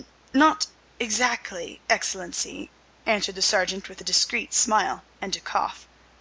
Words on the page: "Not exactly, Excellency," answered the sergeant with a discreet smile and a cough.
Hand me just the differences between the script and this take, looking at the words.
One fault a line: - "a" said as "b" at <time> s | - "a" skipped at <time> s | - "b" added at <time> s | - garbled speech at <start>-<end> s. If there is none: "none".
none